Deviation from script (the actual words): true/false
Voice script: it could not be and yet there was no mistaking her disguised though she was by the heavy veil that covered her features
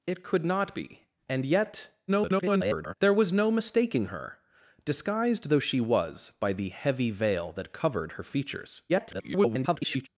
true